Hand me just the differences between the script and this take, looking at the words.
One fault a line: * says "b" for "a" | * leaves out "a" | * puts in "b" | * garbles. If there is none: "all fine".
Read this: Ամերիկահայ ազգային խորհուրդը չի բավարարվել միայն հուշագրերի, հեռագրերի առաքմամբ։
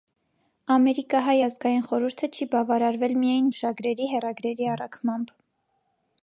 all fine